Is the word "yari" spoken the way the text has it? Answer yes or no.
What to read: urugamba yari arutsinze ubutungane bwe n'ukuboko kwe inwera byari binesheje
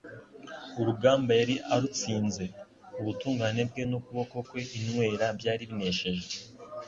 yes